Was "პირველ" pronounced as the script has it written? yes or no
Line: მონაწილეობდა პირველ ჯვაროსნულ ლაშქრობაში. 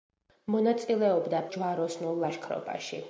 no